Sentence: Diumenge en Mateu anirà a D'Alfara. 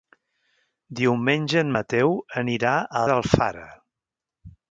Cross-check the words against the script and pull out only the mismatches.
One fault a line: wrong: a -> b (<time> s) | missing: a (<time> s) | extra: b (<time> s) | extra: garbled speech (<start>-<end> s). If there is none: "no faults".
no faults